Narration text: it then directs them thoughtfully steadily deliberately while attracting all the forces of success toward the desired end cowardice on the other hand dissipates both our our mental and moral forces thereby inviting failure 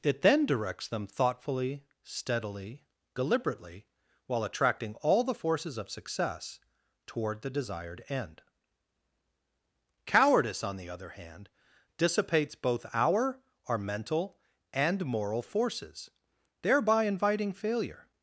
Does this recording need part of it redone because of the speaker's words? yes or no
no